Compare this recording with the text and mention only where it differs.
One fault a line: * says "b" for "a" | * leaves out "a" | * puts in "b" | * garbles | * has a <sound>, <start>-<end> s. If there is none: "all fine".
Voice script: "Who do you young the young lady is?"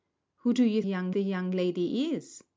all fine